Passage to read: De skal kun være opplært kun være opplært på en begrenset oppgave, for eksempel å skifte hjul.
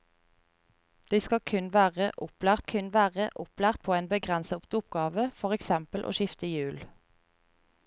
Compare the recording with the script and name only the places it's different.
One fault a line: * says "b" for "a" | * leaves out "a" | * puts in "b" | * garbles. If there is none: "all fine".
all fine